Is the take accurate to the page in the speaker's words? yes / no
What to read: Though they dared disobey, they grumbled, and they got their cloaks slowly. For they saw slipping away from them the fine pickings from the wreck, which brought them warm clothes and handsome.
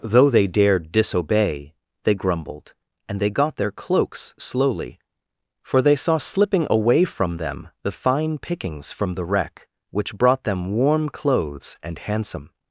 yes